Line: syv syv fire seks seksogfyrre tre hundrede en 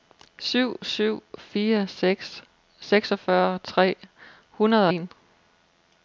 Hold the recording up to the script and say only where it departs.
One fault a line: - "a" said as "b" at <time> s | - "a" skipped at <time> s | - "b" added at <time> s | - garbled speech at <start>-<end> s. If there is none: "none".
none